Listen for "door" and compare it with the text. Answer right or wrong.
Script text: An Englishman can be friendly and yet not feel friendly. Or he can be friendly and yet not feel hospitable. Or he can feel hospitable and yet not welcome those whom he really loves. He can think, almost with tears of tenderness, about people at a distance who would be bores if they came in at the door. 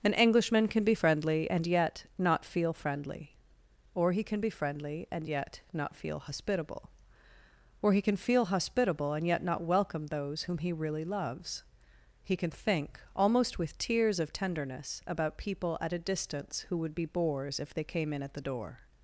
right